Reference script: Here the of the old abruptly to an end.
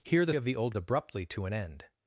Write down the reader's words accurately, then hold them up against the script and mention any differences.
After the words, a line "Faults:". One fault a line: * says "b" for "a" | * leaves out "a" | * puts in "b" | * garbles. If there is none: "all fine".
Here the of the old abruptly to an end.
Faults:
all fine